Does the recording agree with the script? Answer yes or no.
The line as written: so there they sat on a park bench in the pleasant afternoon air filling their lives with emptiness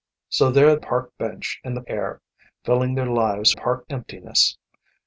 no